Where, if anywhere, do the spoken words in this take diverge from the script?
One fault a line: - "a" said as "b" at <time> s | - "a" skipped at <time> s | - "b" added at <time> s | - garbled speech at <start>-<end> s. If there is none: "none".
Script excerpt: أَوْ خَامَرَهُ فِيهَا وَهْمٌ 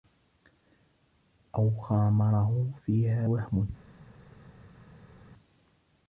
none